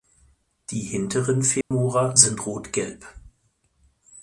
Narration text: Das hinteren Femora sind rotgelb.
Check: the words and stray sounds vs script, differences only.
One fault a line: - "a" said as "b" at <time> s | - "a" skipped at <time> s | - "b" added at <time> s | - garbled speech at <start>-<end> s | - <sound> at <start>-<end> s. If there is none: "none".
- "Das" said as "Die" at 0.7 s
- dropout at 1.6-1.7 s